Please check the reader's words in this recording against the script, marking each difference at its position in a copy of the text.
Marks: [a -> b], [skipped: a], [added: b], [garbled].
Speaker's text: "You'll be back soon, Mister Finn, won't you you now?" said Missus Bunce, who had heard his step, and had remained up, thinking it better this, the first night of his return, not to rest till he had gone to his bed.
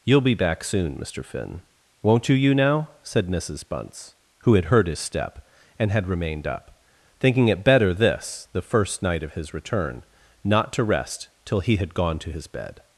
"You'll be back soon, Mister Finn, won't you you now?" said Missus Bunce, who had heard his step, and had remained up, thinking it better this, the first night of his return, not to rest till he had gone to his bed.